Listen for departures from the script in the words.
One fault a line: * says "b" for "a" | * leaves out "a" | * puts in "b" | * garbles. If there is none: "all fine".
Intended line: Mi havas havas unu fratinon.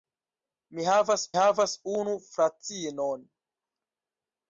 all fine